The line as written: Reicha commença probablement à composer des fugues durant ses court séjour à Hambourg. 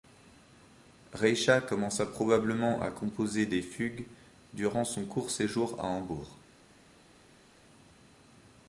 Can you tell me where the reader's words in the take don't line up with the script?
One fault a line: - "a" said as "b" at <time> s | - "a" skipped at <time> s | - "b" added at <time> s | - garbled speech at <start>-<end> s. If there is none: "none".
- "ses" said as "son" at 4.8 s